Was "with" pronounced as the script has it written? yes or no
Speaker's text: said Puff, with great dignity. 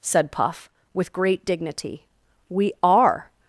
yes